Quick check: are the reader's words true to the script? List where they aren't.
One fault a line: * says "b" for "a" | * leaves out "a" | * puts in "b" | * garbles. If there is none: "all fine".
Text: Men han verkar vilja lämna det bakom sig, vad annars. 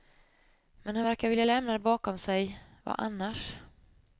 all fine